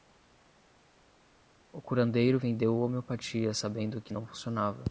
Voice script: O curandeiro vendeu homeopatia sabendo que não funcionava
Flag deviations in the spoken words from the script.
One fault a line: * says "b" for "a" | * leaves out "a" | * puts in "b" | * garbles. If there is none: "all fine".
all fine